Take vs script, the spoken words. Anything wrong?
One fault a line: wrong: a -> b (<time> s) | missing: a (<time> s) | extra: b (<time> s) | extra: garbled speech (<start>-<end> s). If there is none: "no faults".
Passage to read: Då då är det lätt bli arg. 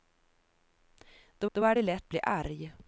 no faults